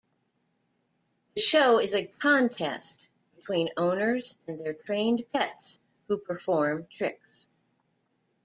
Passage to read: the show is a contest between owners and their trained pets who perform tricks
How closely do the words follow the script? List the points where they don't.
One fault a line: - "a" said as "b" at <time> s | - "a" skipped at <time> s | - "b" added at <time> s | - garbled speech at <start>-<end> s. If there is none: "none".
none